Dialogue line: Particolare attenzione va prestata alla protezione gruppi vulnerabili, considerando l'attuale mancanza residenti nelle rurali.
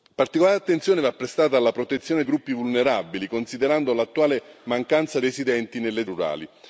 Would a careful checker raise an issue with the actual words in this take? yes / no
no